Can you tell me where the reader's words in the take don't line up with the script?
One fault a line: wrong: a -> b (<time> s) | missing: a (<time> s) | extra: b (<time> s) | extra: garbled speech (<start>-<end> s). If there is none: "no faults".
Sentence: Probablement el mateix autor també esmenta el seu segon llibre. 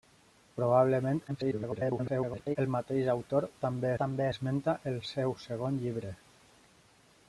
extra: garbled speech (1.3-2.6 s)
extra: també (4.0 s)